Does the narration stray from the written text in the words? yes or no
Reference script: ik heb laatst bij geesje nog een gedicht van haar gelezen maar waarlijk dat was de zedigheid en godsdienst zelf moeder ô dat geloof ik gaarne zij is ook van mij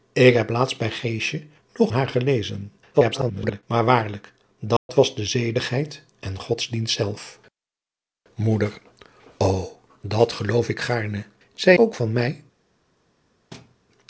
yes